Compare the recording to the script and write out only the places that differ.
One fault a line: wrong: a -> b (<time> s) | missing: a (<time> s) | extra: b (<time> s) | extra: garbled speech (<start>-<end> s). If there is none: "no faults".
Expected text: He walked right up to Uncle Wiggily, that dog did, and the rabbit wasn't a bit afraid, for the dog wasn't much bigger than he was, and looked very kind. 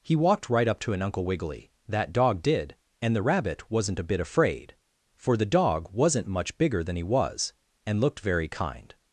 extra: an (0.9 s)